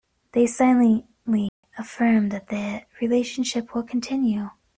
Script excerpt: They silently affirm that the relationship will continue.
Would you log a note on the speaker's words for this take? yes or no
no